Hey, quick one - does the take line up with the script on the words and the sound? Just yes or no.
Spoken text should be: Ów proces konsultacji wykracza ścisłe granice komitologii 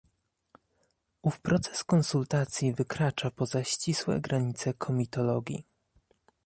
no